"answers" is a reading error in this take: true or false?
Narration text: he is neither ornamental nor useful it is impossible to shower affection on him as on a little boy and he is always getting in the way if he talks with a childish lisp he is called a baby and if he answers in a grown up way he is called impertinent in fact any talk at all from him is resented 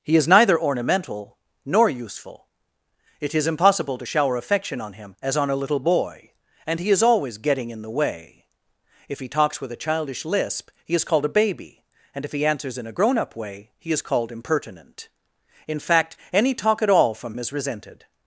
false